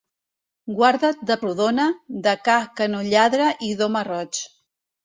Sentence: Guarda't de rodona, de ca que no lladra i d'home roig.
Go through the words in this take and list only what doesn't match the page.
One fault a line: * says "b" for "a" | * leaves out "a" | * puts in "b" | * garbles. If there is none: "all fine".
all fine